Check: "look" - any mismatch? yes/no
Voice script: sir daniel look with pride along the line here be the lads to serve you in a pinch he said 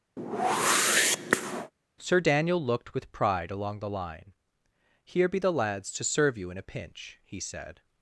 yes